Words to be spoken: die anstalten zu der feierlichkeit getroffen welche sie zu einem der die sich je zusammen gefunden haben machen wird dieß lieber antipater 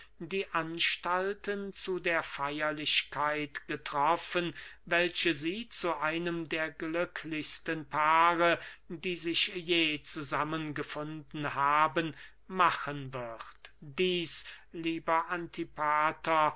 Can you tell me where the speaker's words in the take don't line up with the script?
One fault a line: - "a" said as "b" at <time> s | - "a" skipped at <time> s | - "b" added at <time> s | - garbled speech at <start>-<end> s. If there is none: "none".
- "glücklichsten paare" added at 6.7 s